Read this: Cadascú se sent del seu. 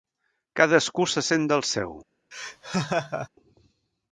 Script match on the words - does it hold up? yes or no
yes